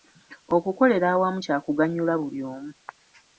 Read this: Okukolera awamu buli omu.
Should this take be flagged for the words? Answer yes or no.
yes